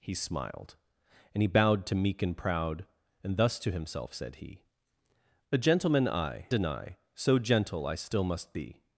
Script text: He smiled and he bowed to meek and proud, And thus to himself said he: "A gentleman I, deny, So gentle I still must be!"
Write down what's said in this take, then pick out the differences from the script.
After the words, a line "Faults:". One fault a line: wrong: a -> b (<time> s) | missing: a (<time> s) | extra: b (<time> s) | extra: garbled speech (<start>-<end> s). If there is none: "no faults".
He smiled and he bowed to meek and proud, And thus to himself said he: "A gentleman I, deny, So gentle I still must be!"
Faults:
no faults